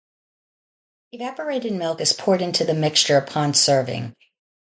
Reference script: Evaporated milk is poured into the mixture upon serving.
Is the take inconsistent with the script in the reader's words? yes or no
no